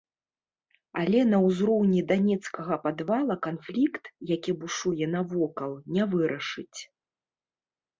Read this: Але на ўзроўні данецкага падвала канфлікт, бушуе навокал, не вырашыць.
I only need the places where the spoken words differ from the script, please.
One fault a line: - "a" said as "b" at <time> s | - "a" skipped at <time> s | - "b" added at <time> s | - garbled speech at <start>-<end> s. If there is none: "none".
- "які" added at 4.4 s